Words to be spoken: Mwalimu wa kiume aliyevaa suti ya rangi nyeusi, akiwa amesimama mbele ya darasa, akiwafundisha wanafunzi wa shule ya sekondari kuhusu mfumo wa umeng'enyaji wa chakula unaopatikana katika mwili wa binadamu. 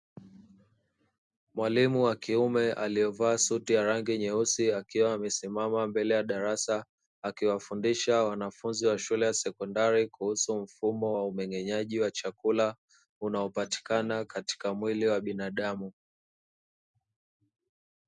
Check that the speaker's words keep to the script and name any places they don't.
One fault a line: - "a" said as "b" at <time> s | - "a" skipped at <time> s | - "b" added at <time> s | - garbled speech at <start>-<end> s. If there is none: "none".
none